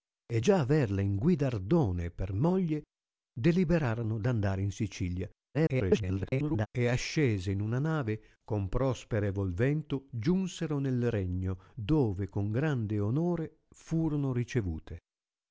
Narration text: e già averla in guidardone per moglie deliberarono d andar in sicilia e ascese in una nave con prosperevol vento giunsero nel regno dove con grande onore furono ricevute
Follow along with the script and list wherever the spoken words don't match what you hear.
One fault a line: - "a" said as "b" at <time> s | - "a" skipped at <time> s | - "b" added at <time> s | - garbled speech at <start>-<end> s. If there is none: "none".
- garbled speech at 5.5-6.7 s